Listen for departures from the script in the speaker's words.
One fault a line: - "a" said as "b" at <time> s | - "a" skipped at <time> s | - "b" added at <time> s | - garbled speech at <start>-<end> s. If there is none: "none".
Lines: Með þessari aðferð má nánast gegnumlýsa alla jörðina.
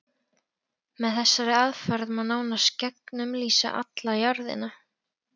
none